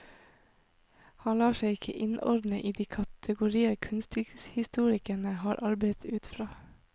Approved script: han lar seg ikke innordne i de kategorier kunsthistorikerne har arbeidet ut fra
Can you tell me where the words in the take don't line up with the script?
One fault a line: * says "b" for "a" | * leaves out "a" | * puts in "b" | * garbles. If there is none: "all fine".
all fine